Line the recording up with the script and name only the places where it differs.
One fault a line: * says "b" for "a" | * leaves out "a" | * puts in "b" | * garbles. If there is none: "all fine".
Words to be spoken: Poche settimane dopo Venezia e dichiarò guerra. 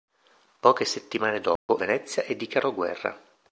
all fine